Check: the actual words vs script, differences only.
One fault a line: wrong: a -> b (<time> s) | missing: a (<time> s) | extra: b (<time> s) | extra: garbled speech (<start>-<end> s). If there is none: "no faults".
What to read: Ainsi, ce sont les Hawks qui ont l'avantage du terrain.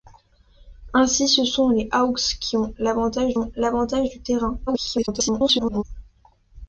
extra: ont l'avantage (3.4 s)
extra: garbled speech (4.7-5.8 s)